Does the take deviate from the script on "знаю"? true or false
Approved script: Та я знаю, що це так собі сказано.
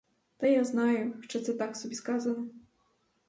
false